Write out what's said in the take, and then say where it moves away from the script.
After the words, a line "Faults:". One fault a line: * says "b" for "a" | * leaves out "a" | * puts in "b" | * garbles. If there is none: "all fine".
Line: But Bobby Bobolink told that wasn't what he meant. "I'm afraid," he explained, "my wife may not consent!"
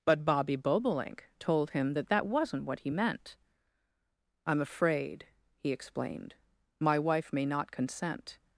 But Bobby Bobolink told him that that wasn't what he meant. "I'm afraid," he explained, "my wife may not consent!"
Faults:
* puts in "him that"